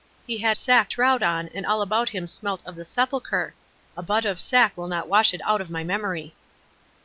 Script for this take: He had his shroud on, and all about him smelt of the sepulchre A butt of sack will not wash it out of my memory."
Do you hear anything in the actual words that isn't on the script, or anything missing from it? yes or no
yes